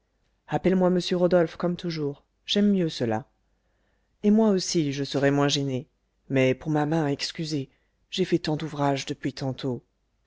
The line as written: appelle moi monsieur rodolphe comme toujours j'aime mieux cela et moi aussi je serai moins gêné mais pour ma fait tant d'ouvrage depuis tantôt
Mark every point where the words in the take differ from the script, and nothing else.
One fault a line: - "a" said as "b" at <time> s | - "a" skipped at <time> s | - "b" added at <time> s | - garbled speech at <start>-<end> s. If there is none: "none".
- "main excusez j'ai" added at 6.9 s